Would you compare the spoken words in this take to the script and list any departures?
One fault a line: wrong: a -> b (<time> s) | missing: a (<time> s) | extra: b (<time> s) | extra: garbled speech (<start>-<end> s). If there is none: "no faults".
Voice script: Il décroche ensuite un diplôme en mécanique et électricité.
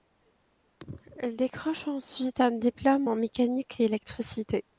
no faults